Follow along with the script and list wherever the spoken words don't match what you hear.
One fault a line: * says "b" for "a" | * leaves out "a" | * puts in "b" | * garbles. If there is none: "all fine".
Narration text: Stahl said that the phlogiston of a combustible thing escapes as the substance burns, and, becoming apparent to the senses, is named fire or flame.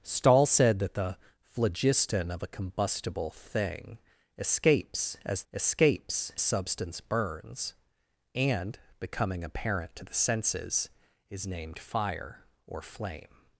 * says "escapes" for "the"